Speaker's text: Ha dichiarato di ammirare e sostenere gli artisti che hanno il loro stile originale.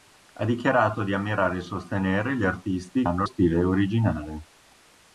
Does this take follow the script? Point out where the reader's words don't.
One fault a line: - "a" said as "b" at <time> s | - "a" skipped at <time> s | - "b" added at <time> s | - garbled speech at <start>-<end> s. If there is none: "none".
- "che" skipped at 3.0 s
- "loro" skipped at 3.3 s